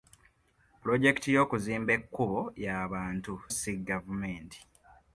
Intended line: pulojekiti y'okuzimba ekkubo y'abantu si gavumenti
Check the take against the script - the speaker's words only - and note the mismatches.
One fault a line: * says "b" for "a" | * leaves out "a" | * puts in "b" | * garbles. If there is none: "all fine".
all fine